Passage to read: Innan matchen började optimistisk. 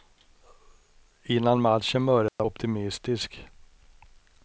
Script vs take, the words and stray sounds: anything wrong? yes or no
yes